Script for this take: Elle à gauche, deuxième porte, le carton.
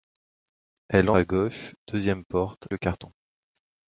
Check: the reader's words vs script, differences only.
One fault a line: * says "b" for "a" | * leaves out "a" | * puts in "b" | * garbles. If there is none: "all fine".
all fine